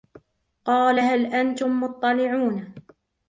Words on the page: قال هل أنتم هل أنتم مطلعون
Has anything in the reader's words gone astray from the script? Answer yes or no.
yes